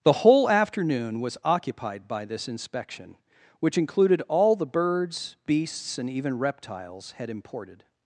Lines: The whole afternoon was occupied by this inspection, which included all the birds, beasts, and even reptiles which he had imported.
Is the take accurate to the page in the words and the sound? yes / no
no